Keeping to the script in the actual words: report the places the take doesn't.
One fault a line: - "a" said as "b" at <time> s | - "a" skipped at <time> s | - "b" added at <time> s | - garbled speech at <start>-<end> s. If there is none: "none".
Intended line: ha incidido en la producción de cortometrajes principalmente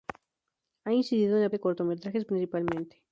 - "producción" skipped at 1.5 s